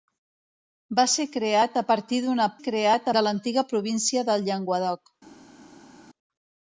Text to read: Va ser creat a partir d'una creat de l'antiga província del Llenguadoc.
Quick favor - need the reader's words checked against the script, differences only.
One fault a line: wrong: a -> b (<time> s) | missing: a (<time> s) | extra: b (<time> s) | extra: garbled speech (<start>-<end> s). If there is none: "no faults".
no faults